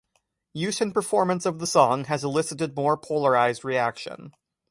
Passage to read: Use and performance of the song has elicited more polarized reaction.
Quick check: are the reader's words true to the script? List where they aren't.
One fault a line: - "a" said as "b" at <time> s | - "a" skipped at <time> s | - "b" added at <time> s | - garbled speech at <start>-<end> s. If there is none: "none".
none